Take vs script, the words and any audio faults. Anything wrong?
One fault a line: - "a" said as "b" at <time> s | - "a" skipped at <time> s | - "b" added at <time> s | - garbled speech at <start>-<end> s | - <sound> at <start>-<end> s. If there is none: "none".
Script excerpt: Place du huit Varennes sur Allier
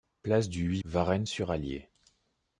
none